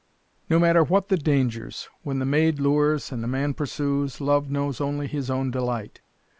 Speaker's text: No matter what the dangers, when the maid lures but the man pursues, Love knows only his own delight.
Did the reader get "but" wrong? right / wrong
wrong